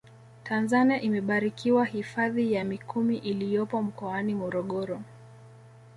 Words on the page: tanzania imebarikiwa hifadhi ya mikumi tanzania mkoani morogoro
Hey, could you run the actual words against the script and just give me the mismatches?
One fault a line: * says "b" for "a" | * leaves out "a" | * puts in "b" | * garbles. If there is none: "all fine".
* says "iliyopo" for "tanzania"